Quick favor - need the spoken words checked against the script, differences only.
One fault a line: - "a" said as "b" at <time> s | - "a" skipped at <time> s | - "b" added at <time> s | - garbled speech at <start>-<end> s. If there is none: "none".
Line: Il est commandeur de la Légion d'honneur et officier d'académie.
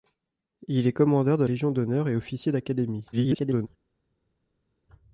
- "la" skipped at 1.4 s
- garbled speech at 3.1-3.7 s